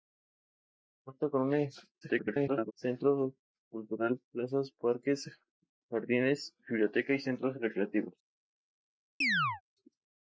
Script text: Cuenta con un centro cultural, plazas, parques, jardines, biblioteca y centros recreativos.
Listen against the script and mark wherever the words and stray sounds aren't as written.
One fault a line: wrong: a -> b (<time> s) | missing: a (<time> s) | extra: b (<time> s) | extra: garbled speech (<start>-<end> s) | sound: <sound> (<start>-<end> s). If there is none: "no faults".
extra: garbled speech (2.0-2.7 s)
sound: chirp (9.2-9.6 s)